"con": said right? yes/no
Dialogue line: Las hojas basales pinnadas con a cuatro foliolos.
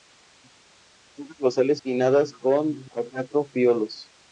yes